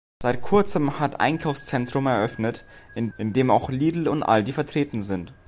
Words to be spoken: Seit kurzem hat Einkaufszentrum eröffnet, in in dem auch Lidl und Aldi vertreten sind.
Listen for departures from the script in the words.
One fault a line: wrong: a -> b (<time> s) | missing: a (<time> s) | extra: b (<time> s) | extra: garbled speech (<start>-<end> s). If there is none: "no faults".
no faults